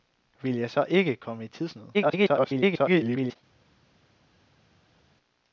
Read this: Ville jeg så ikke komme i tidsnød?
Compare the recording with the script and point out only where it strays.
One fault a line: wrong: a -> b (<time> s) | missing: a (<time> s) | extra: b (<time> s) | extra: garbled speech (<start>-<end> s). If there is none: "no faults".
extra: garbled speech (1.9-3.4 s)